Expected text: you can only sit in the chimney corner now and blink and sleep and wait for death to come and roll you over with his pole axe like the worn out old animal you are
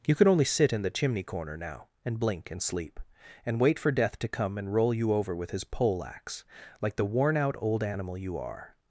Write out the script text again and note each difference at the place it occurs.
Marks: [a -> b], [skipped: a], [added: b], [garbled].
you [can -> could] only sit in the chimney corner now and blink and sleep and wait for death to come and roll you over with his pole axe like the worn out old animal you are